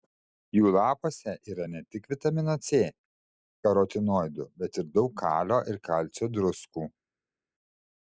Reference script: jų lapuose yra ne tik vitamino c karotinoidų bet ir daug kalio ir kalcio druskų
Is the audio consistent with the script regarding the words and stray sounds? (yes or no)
yes